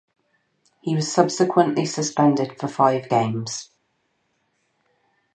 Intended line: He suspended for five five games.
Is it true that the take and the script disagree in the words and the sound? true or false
true